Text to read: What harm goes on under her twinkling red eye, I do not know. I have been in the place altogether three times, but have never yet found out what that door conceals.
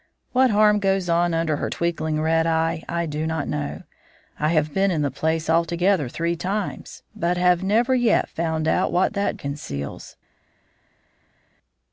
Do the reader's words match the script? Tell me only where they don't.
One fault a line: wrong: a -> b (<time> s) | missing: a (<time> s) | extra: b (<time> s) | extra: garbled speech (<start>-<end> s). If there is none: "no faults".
missing: door (9.4 s)